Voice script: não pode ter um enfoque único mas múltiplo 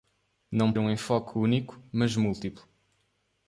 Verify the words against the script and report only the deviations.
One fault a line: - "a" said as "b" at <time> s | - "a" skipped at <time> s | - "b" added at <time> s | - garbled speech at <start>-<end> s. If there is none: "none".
- "pode ter" skipped at 0.7 s